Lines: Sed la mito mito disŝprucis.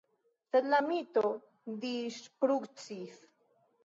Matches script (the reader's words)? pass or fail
fail